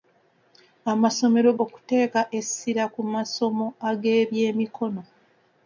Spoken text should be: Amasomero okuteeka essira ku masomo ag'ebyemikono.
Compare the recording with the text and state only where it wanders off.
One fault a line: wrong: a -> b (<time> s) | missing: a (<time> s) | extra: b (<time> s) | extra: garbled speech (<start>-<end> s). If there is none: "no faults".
no faults